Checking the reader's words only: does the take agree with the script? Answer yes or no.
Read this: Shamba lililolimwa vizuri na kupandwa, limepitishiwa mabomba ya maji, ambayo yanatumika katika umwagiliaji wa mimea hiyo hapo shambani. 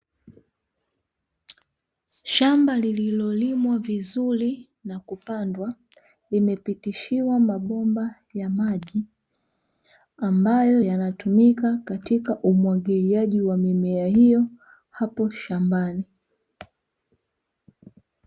yes